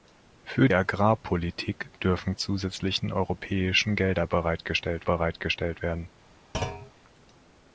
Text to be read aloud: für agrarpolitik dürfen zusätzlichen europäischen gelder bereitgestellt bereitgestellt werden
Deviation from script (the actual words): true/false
false